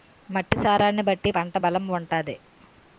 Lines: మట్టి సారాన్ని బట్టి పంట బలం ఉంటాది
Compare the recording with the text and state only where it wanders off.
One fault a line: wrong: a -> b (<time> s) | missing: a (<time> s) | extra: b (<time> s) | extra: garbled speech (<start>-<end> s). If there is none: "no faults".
no faults